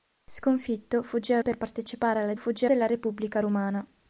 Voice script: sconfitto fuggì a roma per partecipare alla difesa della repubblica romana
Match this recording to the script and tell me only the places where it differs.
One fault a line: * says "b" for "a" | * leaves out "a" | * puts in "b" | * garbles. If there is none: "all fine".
* leaves out "roma"
* says "fuggì" for "difesa"